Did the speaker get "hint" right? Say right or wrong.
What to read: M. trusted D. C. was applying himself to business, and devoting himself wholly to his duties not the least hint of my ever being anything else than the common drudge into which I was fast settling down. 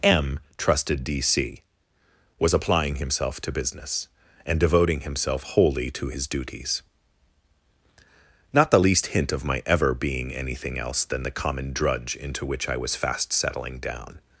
right